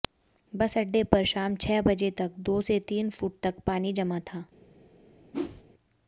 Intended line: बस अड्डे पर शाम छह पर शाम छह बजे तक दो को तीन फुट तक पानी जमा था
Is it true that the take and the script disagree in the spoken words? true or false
true